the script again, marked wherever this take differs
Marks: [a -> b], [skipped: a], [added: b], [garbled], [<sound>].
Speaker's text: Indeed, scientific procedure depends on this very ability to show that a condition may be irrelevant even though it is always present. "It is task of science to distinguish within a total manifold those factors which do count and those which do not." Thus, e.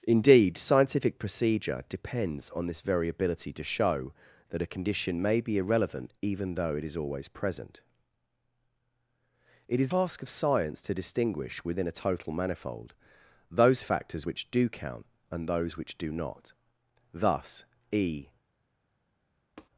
Indeed, scientific procedure depends on this very ability to show that a condition may be irrelevant even though it is always present. "It is task of science to distinguish within a total manifold those factors which do count and those which do not." Thus, e. [tap]